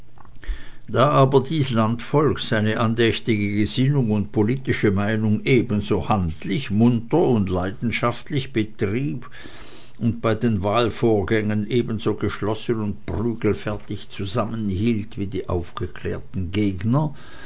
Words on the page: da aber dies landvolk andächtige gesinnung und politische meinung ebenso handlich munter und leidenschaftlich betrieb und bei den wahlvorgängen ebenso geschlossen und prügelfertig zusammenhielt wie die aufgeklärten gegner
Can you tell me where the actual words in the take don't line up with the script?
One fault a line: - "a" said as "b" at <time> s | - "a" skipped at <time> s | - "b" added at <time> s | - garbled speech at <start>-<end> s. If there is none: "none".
- "seine" added at 2.4 s